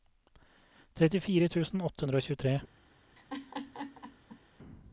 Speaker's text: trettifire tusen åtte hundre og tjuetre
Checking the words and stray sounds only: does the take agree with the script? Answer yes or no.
no